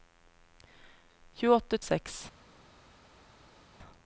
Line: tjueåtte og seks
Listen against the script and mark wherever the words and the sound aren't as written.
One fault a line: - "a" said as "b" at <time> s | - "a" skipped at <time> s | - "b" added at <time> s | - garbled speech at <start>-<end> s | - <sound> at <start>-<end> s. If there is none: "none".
none